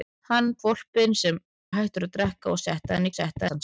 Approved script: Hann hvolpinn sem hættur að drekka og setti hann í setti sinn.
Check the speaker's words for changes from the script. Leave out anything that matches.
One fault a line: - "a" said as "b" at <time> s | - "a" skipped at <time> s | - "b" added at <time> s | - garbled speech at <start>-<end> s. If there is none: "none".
none